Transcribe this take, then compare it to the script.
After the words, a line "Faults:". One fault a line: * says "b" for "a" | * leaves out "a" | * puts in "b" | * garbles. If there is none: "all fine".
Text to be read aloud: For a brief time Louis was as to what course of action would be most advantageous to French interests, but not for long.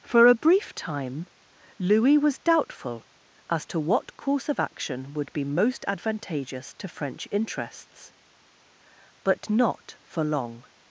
For a brief time Louis was doubtful as to what course of action would be most advantageous to French interests, but not for long.
Faults:
* puts in "doubtful"